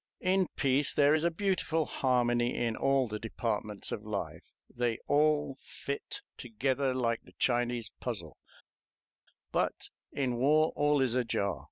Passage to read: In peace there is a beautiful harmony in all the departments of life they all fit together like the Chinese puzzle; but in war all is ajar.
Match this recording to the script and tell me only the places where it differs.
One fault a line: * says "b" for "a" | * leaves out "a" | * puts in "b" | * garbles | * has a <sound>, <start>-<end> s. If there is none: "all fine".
all fine